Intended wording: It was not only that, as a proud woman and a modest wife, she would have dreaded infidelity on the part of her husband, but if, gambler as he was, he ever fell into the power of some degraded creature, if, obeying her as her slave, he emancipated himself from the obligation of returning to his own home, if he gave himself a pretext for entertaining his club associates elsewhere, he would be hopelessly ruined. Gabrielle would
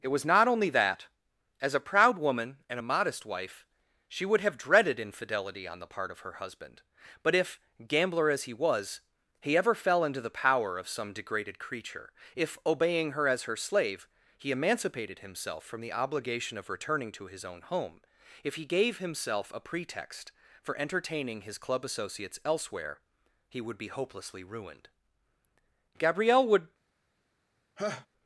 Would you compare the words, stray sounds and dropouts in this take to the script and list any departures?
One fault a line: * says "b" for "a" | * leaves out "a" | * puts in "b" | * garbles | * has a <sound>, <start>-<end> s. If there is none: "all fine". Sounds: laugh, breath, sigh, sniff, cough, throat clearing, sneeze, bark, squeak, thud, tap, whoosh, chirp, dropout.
* has a laugh, 27.8-28.1 s